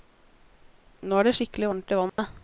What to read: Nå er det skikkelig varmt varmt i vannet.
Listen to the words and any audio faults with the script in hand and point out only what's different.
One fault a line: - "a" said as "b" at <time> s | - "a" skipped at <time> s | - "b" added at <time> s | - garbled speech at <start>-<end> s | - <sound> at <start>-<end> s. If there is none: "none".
- "varmt" skipped at 1.9 s
- dropout at 2.1-2.2 s